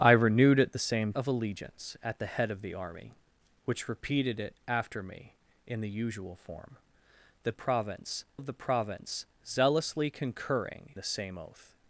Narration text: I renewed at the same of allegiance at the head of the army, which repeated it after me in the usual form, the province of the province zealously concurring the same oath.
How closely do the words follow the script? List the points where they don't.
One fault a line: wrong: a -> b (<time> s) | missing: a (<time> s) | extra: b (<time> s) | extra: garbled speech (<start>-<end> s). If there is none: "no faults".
no faults